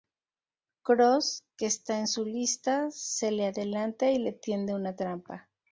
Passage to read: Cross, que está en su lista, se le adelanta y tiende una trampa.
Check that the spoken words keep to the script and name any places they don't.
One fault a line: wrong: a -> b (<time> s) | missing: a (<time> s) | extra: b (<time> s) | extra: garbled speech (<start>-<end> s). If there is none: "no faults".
extra: le (4.2 s)